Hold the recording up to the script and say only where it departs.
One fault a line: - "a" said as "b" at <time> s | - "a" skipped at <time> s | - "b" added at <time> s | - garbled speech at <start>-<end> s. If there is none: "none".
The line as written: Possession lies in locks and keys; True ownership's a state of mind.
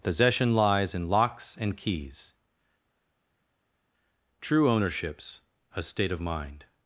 none